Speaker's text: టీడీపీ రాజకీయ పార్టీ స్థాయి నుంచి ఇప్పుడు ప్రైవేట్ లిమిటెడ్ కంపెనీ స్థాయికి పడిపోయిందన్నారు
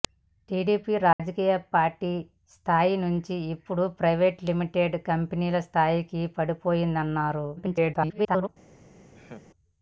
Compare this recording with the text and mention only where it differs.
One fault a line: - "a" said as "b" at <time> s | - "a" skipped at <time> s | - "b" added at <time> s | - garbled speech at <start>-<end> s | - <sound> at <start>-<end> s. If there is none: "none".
- dropout at 1.1-1.2 s
- garbled speech at 7.6-8.5 s
- laugh at 9.1-9.5 s